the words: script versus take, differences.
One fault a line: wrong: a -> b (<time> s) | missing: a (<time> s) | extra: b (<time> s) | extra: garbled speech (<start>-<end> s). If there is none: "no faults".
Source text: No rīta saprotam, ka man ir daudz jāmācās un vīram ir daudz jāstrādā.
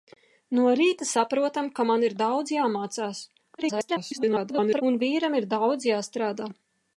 extra: garbled speech (3.6-4.8 s)